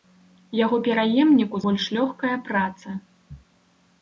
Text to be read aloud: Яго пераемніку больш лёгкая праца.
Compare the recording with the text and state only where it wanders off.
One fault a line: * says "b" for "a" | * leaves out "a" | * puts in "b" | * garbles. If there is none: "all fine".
all fine